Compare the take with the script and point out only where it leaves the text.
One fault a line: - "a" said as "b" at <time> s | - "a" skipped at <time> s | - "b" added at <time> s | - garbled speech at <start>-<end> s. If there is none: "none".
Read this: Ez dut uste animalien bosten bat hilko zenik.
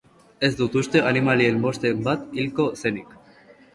none